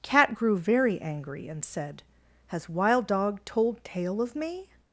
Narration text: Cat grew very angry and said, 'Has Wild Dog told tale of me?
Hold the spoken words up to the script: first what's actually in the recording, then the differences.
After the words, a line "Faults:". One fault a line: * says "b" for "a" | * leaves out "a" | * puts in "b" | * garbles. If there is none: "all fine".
Cat grew very angry and said, 'Has Wild Dog told tale of me?
Faults:
all fine